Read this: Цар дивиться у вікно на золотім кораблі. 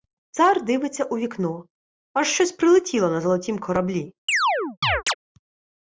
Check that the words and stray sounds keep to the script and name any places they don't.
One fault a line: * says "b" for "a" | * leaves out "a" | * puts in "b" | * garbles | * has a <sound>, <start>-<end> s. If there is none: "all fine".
* puts in "аж щось прилетіло"
* has a chirp, 4.3-5.1 s